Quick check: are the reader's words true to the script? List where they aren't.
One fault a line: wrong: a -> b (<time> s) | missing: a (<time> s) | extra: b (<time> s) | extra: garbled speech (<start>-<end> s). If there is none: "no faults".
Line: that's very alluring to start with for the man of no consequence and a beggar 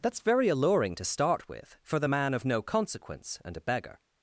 no faults